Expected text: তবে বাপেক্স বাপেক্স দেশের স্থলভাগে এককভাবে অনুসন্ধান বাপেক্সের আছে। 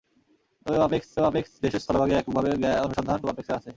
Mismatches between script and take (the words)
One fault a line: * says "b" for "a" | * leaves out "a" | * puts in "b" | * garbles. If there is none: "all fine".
all fine